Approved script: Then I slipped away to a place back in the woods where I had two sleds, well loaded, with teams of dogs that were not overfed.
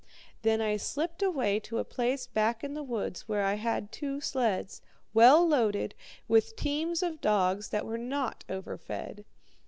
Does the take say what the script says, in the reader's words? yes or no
yes